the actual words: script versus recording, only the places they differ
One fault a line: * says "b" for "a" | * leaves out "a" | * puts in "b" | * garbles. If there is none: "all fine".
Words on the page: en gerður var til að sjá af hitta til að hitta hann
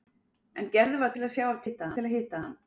all fine